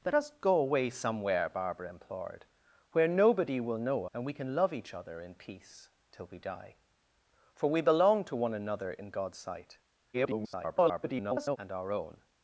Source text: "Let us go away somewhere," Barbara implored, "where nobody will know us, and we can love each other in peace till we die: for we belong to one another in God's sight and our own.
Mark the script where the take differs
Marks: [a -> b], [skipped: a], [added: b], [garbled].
"Let us go away somewhere," Barbara implored, "where nobody will know [skipped: us,] and we can love each other in peace till we die: for we belong to one another in God's sight [garbled] and our own.